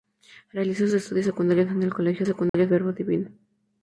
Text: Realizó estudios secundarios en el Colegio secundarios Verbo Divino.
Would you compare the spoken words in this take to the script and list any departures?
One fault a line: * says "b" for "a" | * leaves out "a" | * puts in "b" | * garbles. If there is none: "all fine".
all fine